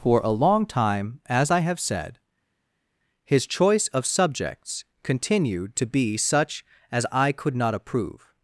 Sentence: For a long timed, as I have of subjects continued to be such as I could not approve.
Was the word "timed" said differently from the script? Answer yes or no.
yes